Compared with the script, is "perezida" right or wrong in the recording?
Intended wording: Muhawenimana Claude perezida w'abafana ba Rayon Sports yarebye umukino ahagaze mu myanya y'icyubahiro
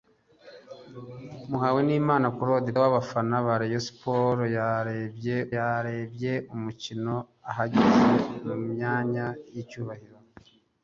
wrong